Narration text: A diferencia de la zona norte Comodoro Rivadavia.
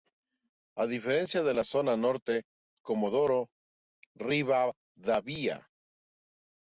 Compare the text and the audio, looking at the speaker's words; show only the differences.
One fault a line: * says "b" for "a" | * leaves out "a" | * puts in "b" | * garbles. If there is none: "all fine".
all fine